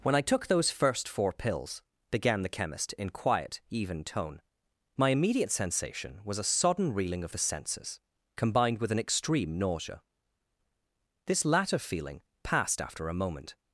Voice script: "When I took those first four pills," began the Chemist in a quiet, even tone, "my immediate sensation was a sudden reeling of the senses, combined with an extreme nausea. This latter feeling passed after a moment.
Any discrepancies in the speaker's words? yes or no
yes